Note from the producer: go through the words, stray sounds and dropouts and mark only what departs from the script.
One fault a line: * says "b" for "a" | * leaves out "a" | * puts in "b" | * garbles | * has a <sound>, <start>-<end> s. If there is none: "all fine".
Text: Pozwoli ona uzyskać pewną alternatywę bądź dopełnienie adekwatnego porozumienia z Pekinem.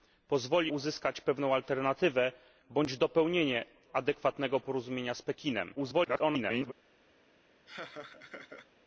* leaves out "ona"
* garbles
* has a laugh, 7.7-8.7 s